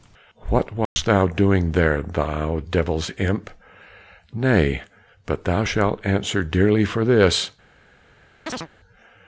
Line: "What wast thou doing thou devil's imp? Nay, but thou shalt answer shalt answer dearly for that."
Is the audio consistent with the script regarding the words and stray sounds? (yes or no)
no